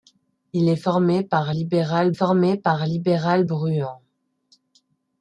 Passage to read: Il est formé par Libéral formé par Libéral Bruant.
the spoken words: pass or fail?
pass